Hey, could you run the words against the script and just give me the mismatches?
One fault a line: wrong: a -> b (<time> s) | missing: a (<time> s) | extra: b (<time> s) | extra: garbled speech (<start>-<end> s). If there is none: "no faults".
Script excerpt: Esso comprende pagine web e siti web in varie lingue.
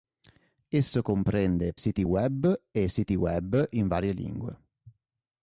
wrong: pagine -> siti (1.7 s)